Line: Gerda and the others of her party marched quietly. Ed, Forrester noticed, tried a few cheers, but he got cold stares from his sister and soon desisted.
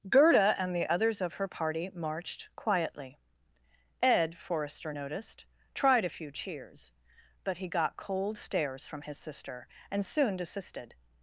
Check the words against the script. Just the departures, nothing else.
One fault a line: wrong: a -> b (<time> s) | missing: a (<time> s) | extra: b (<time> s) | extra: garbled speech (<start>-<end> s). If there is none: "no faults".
no faults